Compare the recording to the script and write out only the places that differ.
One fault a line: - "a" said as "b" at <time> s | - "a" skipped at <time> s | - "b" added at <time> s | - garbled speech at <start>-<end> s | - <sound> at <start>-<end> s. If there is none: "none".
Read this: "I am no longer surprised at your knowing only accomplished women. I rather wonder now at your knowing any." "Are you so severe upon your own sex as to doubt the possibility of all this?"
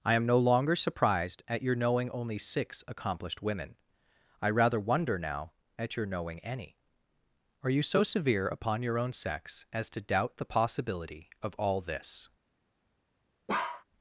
- "six" added at 2.4 s
- bark at 13.5-13.8 s